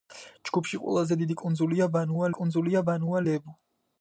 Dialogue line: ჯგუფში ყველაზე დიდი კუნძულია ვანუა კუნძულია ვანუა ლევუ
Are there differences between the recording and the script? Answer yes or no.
no